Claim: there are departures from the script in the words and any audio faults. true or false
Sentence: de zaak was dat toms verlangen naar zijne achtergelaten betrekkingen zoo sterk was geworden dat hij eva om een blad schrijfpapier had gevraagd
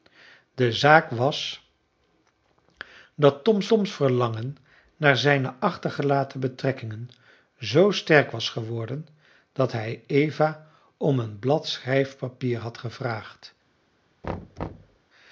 true